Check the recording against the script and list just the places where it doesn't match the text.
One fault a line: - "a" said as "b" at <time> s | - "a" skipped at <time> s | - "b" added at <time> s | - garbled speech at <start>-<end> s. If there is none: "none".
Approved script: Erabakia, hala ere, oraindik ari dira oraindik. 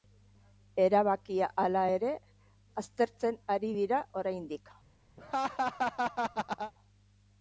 - "oraindik" said as "aztertzen" at 2.8 s